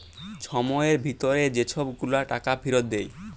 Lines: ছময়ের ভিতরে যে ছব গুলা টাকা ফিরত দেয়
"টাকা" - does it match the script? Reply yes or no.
yes